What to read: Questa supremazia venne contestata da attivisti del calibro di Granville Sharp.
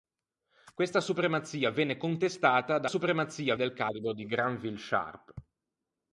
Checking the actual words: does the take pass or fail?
fail